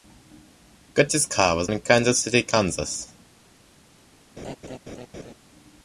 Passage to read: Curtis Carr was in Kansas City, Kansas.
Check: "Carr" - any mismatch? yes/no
no